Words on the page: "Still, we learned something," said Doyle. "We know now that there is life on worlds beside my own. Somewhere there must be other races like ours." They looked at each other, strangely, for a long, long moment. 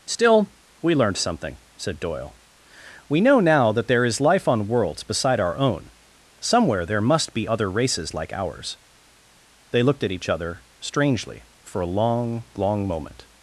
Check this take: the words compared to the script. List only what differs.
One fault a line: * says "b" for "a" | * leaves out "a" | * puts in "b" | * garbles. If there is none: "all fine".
* says "our" for "my"